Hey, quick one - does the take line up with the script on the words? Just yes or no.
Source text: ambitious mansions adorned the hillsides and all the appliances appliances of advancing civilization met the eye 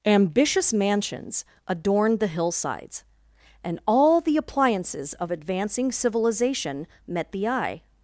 no